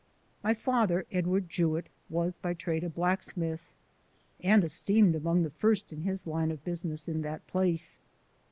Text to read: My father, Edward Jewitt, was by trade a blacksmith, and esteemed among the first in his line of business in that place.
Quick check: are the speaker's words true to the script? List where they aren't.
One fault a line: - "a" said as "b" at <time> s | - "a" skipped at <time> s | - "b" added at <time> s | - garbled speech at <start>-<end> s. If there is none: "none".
none